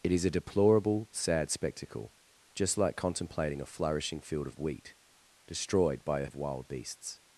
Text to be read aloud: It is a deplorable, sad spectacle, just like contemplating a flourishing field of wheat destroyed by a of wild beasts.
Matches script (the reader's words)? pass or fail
pass